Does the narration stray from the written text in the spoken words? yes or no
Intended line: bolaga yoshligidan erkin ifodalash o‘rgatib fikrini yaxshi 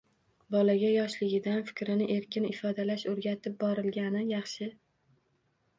yes